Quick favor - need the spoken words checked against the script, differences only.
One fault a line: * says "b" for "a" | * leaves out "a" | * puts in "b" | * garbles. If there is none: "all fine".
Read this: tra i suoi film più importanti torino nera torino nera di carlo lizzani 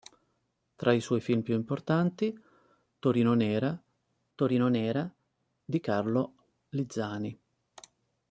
all fine